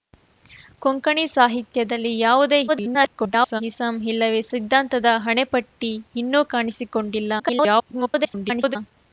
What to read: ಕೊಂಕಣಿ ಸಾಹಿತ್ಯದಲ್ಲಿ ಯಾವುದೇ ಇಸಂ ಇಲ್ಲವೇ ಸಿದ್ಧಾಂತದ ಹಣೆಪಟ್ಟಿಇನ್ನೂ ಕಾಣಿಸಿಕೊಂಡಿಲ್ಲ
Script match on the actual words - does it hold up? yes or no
no